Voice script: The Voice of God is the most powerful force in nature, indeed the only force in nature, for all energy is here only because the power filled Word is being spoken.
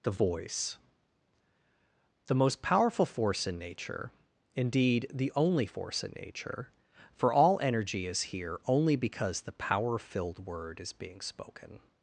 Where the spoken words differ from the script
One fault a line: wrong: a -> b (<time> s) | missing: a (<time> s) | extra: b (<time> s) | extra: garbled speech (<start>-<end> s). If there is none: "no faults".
missing: of God is (0.8 s)